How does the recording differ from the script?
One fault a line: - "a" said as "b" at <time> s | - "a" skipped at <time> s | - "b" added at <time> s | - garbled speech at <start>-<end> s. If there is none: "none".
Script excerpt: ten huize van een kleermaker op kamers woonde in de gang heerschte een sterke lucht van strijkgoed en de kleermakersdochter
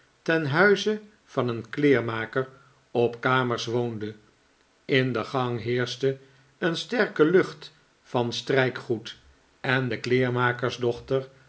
none